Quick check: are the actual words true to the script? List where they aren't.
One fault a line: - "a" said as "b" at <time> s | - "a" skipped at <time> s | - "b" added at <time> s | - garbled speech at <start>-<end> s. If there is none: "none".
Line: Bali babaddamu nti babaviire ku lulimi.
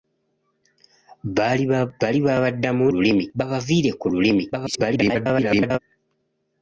- "nti" said as "lulimi" at 2.9 s
- garbled speech at 4.5-5.8 s